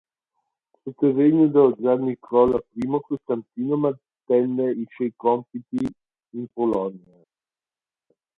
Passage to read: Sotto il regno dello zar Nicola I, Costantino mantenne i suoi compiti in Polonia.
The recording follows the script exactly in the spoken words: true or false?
true